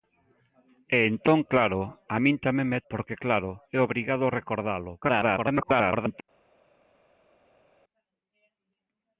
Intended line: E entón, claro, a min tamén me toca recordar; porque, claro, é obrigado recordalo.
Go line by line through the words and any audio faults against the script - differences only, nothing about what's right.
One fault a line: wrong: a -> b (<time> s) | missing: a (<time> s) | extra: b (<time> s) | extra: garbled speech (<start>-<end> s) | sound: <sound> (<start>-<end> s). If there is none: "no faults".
missing: toca recordar (2.8 s)
extra: garbled speech (5.0-6.2 s)